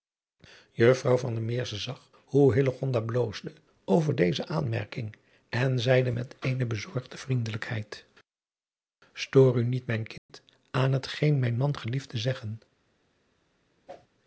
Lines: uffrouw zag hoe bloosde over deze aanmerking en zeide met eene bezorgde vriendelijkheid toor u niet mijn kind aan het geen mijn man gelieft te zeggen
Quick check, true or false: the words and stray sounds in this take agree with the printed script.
false